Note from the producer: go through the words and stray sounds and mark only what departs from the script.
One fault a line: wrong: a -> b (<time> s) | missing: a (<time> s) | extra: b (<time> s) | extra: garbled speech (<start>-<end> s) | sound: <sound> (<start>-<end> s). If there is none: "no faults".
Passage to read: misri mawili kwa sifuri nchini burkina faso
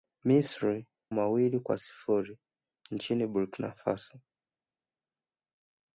no faults